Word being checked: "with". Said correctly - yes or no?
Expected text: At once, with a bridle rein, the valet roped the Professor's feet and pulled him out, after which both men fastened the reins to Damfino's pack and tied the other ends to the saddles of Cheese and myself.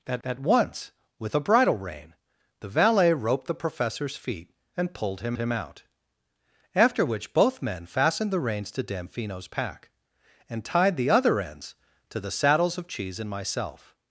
yes